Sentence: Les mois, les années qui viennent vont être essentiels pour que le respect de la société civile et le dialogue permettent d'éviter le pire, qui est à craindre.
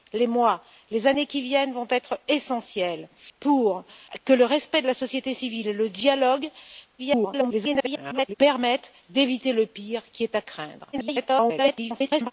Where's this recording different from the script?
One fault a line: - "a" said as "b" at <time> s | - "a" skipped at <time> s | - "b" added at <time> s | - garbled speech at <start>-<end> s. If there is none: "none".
- garbled speech at 7.0-8.3 s
- garbled speech at 10.9-12.3 s